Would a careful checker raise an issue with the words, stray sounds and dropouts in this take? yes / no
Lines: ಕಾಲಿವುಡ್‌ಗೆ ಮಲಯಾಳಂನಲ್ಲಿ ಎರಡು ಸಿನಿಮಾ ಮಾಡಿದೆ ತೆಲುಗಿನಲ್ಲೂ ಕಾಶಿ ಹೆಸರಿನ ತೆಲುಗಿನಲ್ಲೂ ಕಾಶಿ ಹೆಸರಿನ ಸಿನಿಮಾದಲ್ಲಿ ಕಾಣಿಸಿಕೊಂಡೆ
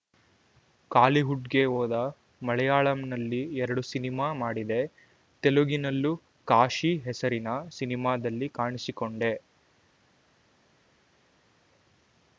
yes